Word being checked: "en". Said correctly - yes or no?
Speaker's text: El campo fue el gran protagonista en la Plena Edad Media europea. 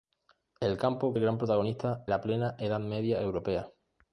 no